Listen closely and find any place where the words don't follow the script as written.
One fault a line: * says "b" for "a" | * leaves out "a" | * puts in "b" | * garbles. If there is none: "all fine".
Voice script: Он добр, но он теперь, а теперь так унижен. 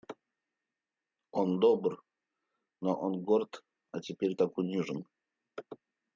* says "горд" for "теперь"